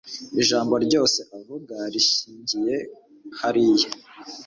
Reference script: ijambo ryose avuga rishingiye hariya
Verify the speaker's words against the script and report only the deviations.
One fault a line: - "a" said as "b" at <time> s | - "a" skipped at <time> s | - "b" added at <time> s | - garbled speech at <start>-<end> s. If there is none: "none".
none